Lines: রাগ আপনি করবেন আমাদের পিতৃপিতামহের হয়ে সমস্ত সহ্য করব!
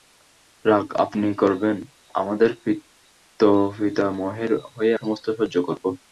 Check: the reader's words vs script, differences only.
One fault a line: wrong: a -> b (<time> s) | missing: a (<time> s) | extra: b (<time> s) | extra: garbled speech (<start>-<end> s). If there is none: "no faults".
no faults